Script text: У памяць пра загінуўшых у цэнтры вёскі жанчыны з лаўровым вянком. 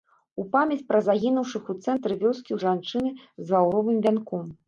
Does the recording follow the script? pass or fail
pass